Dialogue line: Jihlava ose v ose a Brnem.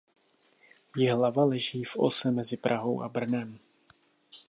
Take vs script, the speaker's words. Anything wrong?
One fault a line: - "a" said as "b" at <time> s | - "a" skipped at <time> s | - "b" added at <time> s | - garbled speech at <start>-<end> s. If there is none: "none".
- "ose" said as "leží" at 1.4 s
- "mezi Prahou" added at 2.3 s